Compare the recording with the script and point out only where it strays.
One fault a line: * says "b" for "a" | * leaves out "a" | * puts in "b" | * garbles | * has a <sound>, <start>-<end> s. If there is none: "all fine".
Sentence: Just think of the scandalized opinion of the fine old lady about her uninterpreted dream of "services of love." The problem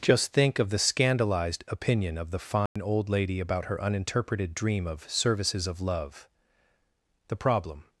* has a dropout, 2.7-2.8 s